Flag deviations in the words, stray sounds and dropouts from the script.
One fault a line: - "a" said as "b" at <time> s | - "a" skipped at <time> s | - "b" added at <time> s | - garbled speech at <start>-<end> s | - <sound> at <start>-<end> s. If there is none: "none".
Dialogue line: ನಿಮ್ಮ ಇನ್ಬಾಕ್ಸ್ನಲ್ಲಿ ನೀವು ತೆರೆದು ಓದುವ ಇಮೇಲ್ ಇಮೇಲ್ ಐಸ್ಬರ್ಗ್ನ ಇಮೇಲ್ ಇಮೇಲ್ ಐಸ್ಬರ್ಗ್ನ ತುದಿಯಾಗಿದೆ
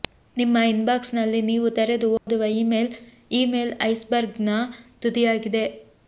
- dropout at 2.2-2.3 s
- "ಇಮೇಲ್ ಇಮೇಲ್ ಐಸ್ಬರ್ಗ್ನ" skipped at 4.6 s